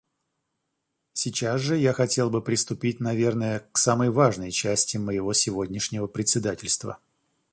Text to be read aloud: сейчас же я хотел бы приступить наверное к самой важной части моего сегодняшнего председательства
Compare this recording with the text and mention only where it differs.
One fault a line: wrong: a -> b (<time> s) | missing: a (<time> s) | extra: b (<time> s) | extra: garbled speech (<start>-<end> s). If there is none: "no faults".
no faults